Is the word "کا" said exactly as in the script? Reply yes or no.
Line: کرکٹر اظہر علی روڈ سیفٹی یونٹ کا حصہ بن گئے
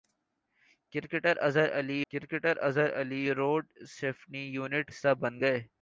no